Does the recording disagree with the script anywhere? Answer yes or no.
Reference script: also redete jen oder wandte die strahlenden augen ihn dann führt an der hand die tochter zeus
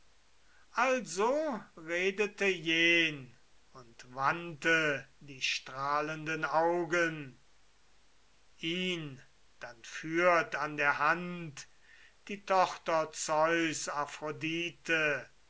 yes